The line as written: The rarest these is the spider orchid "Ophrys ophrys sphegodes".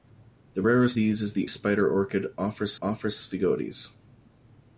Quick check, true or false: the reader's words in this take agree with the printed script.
true